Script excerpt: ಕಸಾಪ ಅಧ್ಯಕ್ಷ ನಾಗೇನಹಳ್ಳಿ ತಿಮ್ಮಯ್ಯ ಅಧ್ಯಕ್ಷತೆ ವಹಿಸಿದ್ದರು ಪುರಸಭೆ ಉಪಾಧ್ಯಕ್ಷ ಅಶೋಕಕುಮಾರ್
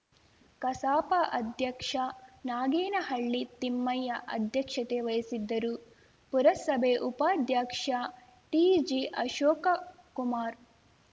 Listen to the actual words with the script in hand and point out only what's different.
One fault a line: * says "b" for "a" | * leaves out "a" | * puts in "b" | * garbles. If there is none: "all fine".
* puts in "ಟಿಜಿ"